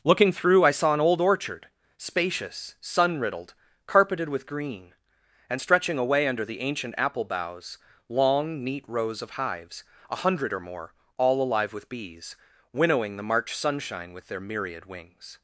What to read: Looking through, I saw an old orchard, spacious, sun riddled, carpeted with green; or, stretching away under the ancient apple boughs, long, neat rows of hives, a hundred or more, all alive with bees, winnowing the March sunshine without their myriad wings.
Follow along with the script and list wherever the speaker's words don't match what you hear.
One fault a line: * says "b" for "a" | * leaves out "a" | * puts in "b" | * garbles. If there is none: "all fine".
* says "and" for "or"
* says "with" for "without"